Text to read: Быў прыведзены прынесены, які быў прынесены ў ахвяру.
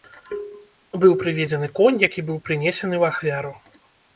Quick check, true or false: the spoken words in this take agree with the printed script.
false